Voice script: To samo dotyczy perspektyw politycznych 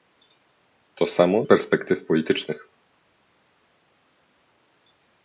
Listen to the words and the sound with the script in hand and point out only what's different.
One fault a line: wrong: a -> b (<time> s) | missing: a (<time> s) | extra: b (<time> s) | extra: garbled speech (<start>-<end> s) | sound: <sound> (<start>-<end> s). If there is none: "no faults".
missing: dotyczy (1.4 s)